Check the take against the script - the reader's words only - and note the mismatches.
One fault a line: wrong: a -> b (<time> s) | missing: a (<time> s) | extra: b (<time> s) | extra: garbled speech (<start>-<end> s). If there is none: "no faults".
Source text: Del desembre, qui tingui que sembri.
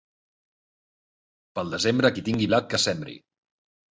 wrong: Del -> Pel (1.6 s)
extra: blat (2.5 s)